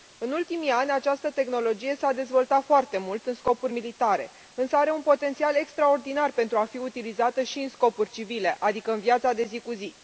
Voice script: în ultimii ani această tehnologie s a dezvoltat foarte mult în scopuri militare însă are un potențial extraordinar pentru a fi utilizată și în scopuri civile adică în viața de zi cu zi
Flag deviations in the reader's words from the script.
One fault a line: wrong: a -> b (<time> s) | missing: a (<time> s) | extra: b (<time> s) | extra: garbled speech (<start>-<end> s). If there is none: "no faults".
no faults